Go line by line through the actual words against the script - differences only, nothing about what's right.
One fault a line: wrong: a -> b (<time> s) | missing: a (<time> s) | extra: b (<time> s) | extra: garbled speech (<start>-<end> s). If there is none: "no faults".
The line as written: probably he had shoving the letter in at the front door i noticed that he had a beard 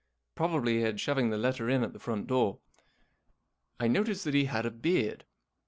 no faults